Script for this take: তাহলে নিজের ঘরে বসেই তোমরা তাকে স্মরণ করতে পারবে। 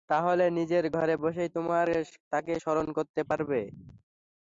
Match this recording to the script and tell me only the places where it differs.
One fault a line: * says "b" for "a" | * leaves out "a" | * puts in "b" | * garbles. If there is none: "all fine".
all fine